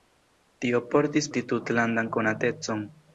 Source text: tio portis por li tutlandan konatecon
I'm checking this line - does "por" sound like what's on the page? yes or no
no